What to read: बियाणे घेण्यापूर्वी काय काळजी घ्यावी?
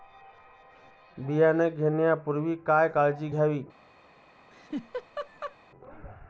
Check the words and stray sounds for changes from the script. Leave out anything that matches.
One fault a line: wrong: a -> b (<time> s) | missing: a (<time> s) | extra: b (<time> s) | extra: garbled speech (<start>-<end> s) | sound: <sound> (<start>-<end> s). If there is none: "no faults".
sound: laugh (4.5-5.6 s)